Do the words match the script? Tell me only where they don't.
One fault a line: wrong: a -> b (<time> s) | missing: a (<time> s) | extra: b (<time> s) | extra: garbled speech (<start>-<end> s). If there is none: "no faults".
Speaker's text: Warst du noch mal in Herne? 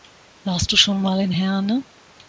wrong: noch -> schon (0.8 s)